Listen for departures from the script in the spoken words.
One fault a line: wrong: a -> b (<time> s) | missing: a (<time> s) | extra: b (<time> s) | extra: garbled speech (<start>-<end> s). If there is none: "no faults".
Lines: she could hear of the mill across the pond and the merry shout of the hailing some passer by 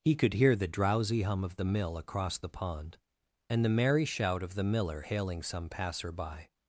wrong: she -> he (0.0 s)
extra: the drowsy hum (0.6 s)
extra: miller (4.6 s)